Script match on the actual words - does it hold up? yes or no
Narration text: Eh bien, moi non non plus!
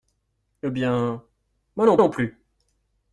yes